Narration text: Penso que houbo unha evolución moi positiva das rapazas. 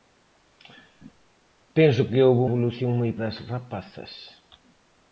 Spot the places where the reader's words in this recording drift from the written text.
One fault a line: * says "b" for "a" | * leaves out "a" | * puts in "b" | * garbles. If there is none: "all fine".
* leaves out "unha"
* leaves out "positiva"